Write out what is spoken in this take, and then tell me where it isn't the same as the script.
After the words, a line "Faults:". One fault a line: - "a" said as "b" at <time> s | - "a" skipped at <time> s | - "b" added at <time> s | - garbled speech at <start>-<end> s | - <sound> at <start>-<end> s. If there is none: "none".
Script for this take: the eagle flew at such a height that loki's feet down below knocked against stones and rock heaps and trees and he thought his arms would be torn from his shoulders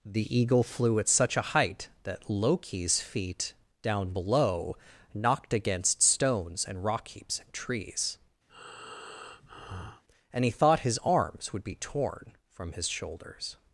the eagle flew at such a height that loki's feet down below knocked against stones and rock heaps and trees and he thought his arms would be torn from his shoulders
Faults:
- breath at 8.5-10.0 s